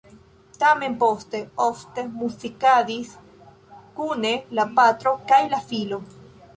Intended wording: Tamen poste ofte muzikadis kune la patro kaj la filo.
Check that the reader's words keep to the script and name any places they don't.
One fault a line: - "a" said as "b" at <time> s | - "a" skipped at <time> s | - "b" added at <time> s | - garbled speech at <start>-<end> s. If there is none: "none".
none